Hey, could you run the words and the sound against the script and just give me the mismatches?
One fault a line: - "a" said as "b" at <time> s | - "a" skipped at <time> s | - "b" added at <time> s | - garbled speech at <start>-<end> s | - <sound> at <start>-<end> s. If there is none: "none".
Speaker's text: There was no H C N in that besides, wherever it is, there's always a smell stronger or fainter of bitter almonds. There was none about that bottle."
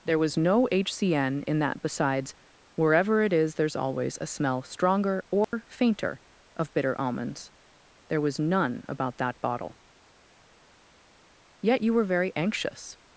- dropout at 5.4-5.5 s
- "Yet you were very anxious" added at 11.6 s